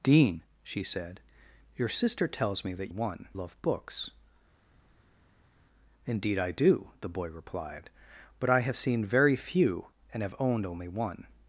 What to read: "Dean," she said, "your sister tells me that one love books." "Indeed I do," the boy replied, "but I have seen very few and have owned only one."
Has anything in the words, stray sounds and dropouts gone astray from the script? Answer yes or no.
no